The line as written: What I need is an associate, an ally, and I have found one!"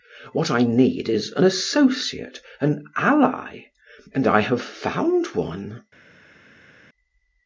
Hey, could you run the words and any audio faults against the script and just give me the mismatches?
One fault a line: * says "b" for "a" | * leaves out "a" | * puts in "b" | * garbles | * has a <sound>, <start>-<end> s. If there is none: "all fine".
all fine